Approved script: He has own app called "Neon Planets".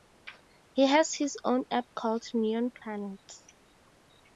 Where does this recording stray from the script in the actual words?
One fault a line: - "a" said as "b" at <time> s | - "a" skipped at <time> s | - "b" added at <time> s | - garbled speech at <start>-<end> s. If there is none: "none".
- "his" added at 1.1 s